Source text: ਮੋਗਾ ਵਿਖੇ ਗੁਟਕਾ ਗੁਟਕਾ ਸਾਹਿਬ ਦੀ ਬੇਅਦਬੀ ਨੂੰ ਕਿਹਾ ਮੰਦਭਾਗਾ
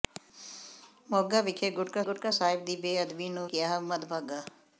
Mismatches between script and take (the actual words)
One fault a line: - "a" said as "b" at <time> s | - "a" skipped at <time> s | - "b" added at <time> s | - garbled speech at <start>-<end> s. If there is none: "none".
none